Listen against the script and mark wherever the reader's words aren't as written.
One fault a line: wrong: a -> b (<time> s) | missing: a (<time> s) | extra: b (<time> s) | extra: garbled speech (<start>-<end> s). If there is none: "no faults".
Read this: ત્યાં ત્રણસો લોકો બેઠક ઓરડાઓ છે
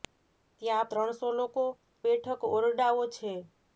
no faults